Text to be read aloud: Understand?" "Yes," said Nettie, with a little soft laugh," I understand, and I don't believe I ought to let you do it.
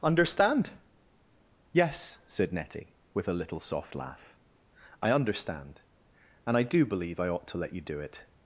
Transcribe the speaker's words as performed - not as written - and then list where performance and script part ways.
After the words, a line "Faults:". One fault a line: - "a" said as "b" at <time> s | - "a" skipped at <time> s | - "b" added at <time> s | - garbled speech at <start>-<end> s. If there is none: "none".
Understand?" "Yes," said Nettie, with a little soft laugh," I understand, and I do believe I ought to let you do it.
Faults:
- "don't" said as "do" at 6.6 s